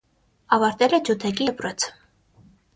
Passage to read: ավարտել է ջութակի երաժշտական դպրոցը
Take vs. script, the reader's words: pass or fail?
fail